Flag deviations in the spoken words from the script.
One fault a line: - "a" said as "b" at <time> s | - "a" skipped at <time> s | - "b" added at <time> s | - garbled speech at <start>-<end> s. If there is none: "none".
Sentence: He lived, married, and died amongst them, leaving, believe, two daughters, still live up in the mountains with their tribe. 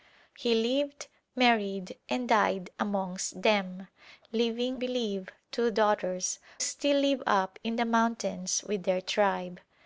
none